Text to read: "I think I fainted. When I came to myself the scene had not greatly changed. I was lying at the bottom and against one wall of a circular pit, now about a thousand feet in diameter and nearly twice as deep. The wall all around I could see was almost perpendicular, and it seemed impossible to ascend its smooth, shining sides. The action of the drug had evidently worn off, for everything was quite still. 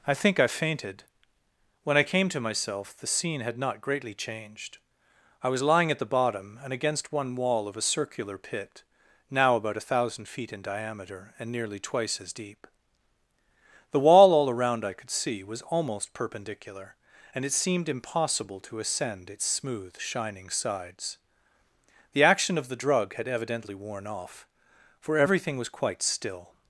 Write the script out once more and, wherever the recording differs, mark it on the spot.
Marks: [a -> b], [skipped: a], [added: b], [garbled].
"I think I fainted. When I came to myself the scene had not greatly changed. I was lying at the bottom and against one wall of a circular pit, now about a thousand feet in diameter and nearly twice as deep. The wall all around I could see was almost perpendicular, and it seemed impossible to ascend its smooth, shining sides. The action of the drug had evidently worn off, for everything was quite still.